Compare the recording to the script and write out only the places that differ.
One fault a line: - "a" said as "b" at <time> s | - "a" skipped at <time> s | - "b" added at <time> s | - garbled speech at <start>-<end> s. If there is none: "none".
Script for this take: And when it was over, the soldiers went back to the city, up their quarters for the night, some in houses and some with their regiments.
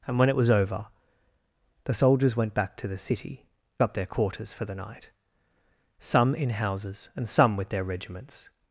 none